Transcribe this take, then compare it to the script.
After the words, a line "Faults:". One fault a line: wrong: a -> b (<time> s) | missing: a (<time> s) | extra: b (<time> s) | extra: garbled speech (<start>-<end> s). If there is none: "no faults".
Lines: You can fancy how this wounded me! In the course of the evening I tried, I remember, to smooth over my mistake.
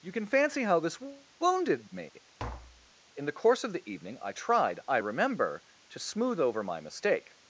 You can fancy how this wounded me! In the course of the evening I tried, I remember, to smooth over my mistake.
Faults:
no faults